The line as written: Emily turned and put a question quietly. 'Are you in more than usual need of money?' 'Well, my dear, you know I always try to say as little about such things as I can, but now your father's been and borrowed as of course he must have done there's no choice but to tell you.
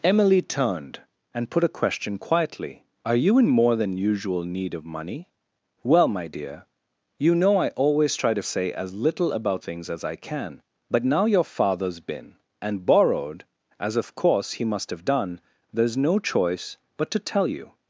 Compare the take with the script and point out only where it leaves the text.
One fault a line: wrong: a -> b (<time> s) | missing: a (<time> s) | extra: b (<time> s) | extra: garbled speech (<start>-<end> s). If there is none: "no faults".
missing: such (9.6 s)